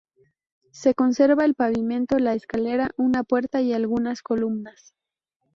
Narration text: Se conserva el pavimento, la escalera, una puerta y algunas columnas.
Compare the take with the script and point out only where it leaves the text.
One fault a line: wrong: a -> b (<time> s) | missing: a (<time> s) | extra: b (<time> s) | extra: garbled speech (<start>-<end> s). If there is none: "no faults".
no faults